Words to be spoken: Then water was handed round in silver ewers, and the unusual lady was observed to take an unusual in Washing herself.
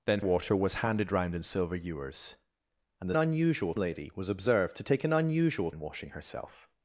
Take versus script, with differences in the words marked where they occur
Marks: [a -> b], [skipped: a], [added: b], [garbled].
Then water was handed round in silver ewers, and the unusual lady was observed to take an unusual in Washing herself.